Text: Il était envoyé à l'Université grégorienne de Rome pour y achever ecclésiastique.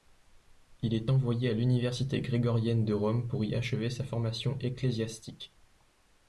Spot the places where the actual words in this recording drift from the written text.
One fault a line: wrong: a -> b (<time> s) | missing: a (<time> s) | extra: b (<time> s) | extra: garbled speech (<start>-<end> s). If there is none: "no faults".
wrong: était -> est (0.9 s)
extra: sa formation (3.9 s)